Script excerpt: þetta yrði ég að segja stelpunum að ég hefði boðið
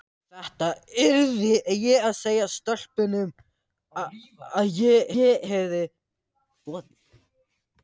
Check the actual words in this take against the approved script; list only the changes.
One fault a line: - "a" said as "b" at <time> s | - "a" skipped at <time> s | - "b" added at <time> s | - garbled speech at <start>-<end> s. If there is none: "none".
- "ég" added at 5.2 s